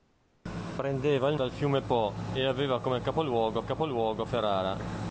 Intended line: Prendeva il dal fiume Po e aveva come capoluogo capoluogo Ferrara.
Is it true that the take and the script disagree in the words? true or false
false